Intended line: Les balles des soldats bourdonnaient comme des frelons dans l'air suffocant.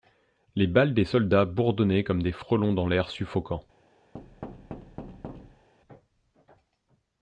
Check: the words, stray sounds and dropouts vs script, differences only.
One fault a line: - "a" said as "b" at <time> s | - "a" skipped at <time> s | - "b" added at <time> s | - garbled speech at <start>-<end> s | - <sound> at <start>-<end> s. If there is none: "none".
- thud at 4.1-5.7 s